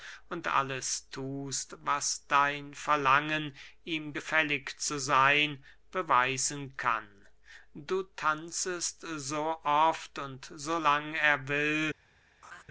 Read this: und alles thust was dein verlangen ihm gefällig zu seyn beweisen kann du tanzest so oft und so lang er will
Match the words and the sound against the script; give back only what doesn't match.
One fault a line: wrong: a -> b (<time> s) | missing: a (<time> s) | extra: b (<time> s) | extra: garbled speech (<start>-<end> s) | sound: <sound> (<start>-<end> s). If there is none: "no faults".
sound: laugh (12.4-12.6 s)